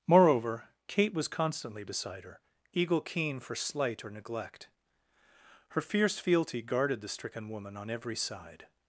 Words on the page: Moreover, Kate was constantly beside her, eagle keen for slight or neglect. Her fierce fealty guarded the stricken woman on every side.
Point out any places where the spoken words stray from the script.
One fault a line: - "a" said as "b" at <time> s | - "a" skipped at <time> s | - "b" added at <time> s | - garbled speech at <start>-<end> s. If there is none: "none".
none